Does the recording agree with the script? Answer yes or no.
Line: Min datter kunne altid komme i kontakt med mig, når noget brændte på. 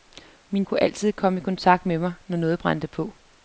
no